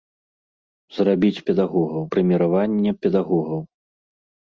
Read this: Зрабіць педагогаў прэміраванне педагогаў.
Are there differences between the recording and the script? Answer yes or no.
no